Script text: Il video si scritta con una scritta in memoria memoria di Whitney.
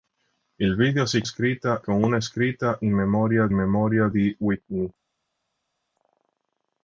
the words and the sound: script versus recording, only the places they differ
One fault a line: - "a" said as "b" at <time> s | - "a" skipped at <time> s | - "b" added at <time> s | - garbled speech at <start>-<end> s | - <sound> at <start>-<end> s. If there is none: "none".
none